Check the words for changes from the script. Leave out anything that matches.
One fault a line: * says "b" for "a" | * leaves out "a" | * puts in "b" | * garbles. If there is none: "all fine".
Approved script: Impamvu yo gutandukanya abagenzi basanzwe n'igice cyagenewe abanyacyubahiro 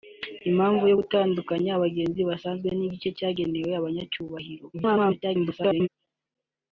* garbles